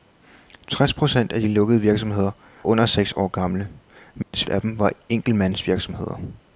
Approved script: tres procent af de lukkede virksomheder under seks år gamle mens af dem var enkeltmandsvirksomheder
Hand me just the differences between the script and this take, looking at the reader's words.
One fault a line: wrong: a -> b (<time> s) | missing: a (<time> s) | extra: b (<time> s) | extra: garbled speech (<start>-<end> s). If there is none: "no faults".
no faults